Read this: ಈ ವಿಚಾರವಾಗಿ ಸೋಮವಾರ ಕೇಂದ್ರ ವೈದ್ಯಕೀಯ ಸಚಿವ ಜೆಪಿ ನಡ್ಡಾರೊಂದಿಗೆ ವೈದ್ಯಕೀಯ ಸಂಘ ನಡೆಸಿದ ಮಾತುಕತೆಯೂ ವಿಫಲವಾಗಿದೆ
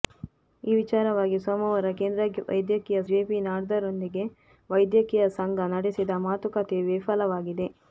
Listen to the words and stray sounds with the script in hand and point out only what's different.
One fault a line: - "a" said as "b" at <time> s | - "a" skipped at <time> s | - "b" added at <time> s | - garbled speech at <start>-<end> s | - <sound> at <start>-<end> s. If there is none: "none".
- "ಸಚಿವ" skipped at 3.0 s